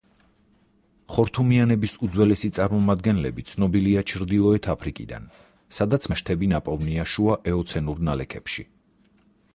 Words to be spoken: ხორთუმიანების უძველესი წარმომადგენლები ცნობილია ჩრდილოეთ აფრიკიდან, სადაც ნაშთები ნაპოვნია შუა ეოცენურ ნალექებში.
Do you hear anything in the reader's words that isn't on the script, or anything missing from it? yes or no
no